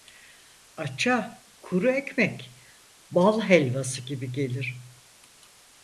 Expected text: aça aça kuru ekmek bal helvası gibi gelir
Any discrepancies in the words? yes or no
yes